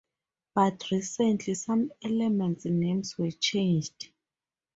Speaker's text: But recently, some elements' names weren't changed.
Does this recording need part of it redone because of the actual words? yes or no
yes